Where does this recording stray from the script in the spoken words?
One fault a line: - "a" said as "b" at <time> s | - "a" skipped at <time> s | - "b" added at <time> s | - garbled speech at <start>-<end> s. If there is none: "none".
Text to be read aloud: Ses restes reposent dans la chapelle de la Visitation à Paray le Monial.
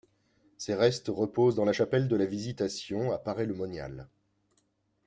none